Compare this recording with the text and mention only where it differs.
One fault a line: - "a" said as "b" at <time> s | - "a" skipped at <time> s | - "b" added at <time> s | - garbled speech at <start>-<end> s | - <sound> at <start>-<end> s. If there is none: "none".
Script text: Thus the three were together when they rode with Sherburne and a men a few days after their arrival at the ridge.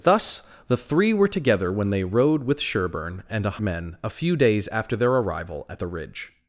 none